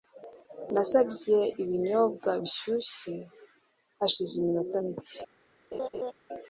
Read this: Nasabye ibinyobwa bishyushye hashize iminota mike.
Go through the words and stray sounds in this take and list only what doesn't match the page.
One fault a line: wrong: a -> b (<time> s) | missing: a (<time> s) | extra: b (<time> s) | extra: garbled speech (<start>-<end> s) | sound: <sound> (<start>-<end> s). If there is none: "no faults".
sound: laugh (5.7-6.1 s)